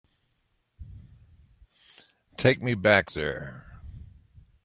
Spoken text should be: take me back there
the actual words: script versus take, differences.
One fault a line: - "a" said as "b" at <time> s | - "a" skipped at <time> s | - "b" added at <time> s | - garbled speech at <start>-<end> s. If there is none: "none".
none